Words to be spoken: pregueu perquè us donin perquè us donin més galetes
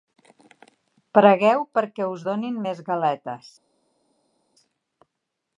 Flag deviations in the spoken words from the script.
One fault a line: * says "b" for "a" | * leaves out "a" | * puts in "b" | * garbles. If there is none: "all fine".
* leaves out "perquè us donin"